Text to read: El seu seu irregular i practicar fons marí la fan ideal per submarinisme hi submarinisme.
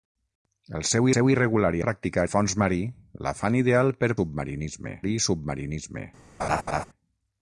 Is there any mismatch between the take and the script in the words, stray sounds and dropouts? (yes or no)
yes